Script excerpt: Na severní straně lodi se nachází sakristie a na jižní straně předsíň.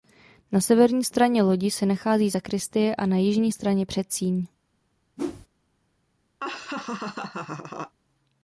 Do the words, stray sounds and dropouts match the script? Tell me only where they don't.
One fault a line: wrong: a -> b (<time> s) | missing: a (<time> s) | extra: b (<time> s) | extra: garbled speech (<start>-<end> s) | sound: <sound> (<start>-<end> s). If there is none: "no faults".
sound: whoosh (5.2-5.5 s)
sound: laugh (6.4-8.0 s)